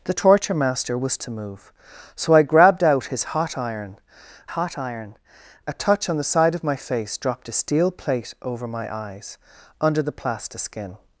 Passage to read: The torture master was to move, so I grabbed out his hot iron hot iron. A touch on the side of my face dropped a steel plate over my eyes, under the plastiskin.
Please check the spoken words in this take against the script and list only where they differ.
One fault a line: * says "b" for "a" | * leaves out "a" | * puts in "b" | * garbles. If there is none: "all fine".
all fine